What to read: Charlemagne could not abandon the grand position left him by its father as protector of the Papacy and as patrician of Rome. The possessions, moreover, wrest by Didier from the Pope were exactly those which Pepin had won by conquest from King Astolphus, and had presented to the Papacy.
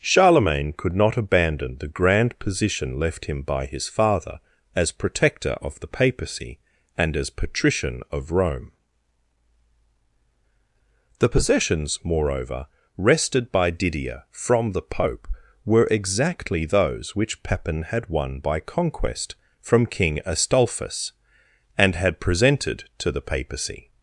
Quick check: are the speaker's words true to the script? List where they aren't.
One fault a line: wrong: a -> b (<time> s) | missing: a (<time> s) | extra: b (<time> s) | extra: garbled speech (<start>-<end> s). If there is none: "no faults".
wrong: its -> his (3.7 s)
wrong: wrest -> wrested (13.0 s)